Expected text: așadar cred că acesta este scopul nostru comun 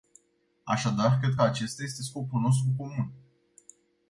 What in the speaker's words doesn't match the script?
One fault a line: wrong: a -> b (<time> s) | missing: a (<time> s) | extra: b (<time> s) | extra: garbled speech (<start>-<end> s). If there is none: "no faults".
no faults